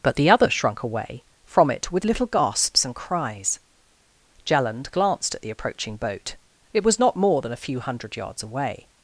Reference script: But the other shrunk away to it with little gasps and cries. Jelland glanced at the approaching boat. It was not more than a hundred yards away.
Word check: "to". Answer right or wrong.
wrong